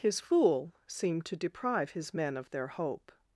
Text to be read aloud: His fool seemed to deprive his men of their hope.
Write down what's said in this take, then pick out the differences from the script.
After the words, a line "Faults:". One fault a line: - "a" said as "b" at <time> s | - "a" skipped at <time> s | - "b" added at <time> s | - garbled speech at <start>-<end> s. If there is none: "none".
His fool seemed to deprive his men of their hope.
Faults:
none